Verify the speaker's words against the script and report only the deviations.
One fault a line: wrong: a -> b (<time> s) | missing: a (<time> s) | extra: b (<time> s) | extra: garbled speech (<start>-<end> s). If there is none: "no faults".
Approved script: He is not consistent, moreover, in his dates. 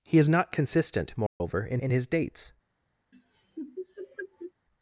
extra: in (1.8 s)